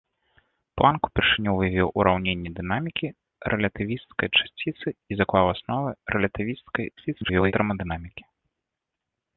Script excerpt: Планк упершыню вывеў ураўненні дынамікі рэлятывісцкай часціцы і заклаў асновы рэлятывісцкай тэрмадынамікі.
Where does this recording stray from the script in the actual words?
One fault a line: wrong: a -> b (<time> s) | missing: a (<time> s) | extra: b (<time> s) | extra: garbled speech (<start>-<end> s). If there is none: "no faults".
extra: garbled speech (7.0-7.5 s)